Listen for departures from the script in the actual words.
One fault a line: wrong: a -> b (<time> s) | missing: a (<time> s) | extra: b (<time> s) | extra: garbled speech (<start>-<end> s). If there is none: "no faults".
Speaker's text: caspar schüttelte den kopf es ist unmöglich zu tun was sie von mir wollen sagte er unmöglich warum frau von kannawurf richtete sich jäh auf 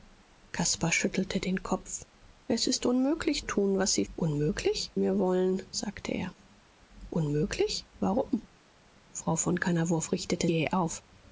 missing: zu (3.5 s)
wrong: von -> unmöglich (4.1 s)
missing: sich (10.5 s)